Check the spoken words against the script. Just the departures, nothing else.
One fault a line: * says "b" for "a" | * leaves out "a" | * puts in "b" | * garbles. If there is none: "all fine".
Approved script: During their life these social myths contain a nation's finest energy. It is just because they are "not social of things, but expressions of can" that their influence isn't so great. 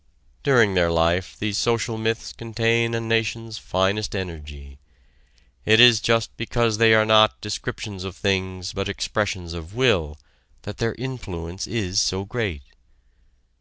* says "descriptions" for "social"
* says "will" for "can"
* says "is" for "isn't"